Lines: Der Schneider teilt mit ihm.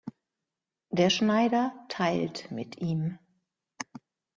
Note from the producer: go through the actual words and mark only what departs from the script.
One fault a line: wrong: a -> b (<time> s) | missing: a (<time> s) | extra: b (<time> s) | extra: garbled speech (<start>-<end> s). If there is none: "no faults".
no faults